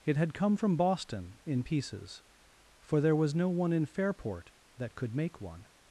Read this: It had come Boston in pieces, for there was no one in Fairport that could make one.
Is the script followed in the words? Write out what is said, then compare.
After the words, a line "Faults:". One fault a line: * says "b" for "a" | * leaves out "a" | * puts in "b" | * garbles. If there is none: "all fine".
It had come from Boston in pieces, for there was no one in Fairport that could make one.
Faults:
* puts in "from"